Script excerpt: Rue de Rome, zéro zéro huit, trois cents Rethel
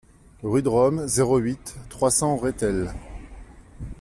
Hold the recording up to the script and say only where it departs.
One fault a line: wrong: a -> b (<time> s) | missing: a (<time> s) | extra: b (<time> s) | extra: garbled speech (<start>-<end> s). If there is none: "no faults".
missing: zéro (1.4 s)